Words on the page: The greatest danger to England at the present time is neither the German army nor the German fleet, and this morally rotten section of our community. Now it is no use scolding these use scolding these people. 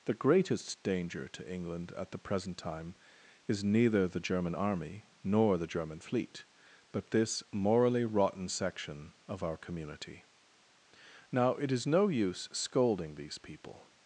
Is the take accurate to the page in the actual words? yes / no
no